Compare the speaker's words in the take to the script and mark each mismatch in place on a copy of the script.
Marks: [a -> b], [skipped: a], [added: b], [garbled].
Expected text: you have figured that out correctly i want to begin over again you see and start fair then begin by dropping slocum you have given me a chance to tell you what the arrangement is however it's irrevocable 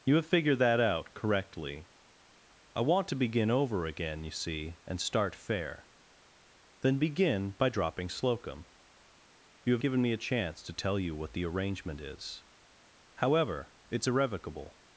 you have figured that out correctly i want to begin over again you see and start fair then begin by dropping slocum you have given me a chance to tell you what the arrangement is however it's irrevocable